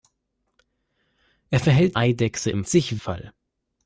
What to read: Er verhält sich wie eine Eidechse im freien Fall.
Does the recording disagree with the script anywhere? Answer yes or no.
yes